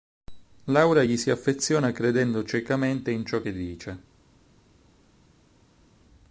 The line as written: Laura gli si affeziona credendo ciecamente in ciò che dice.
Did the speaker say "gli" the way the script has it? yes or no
yes